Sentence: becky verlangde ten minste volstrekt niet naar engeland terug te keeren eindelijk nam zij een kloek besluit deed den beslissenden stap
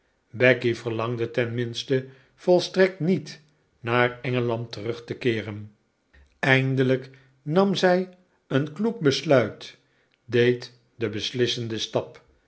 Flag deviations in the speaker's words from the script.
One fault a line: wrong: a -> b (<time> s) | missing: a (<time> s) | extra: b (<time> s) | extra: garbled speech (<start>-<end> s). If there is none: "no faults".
no faults